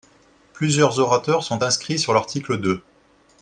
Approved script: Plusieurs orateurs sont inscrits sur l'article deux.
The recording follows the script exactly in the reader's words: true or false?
true